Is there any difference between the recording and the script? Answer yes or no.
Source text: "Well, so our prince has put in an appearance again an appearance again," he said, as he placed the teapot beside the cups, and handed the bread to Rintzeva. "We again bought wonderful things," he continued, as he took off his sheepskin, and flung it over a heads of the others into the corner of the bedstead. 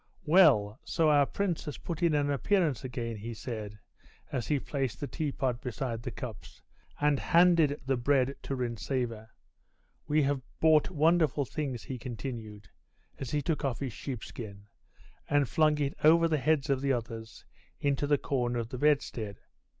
yes